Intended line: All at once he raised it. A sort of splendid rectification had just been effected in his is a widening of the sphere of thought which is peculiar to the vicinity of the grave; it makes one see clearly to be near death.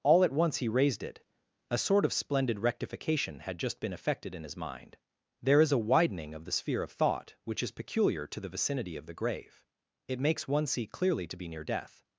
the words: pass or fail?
fail